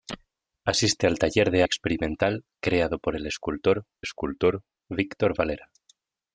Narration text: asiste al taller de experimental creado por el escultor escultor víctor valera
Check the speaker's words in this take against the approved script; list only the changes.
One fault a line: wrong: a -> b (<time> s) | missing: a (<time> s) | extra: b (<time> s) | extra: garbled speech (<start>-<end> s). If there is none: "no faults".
no faults